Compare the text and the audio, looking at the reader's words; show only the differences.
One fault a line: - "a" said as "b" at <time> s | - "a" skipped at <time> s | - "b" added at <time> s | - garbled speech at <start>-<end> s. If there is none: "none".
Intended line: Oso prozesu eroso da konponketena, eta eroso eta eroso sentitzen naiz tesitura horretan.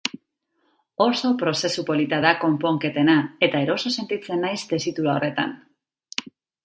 - "eroso" said as "polita" at 1.9 s
- "eta eroso" skipped at 3.9 s